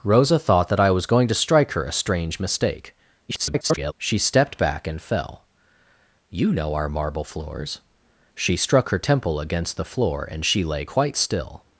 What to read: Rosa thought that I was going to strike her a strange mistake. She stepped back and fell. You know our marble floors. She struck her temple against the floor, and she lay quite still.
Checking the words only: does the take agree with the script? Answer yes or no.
no